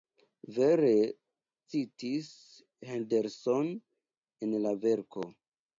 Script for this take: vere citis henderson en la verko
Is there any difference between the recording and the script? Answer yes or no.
no